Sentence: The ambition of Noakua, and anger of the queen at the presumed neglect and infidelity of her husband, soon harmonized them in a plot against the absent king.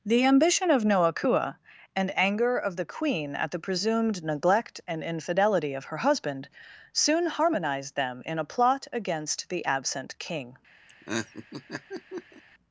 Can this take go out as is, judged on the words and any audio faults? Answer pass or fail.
fail